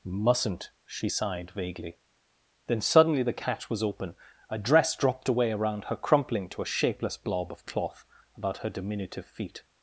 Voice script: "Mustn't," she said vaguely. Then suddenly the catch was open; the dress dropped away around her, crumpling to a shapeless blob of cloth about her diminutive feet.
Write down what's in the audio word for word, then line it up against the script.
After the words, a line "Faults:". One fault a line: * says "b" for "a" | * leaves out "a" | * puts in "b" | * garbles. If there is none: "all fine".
"Mustn't," she sighed vaguely. Then suddenly the catch was open; a dress dropped away around her, crumpling to a shapeless blob of cloth about her diminutive feet.
Faults:
* says "sighed" for "said"
* says "a" for "the"